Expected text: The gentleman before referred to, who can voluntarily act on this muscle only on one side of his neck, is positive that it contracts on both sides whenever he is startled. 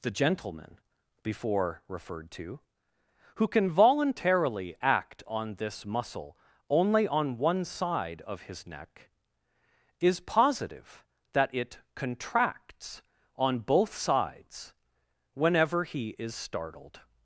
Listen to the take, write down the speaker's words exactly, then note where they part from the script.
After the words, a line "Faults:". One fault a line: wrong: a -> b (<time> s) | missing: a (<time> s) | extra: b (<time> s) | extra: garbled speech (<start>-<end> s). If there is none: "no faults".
The gentleman before referred to, who can voluntarily act on this muscle only on one side of his neck, is positive that it contracts on both sides whenever he is startled.
Faults:
no faults